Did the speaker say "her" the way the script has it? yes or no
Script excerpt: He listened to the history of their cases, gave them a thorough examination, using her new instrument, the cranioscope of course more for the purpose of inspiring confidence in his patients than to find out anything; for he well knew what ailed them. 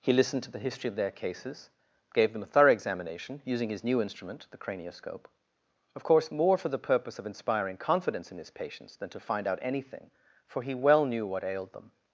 no